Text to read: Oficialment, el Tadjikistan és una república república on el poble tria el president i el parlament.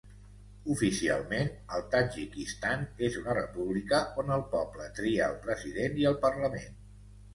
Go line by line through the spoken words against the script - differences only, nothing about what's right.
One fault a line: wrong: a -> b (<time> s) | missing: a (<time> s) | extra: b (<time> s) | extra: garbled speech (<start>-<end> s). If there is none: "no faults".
missing: república (4.0 s)